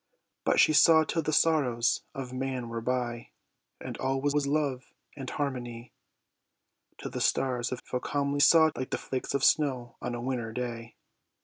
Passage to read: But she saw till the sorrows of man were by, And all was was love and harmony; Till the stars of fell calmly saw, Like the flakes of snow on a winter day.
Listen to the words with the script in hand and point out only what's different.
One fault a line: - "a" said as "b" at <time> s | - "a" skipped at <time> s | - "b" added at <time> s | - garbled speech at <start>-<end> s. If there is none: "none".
none